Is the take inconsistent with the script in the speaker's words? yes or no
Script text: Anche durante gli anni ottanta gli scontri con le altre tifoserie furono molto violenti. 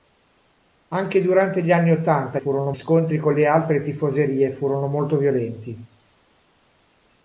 yes